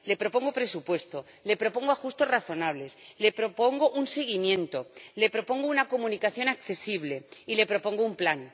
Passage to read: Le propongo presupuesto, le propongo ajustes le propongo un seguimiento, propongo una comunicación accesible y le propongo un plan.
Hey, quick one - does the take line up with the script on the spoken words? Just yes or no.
no